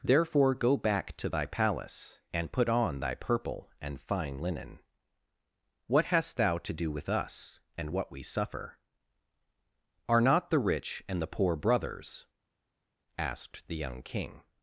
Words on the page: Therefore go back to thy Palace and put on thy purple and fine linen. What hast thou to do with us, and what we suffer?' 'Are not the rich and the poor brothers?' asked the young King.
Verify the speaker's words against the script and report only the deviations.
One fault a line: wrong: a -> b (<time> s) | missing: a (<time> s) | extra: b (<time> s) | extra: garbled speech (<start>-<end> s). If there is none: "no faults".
no faults